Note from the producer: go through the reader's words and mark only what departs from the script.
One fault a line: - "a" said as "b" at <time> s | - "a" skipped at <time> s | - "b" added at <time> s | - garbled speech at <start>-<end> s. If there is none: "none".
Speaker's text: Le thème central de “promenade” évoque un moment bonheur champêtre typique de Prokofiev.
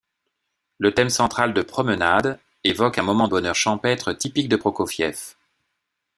none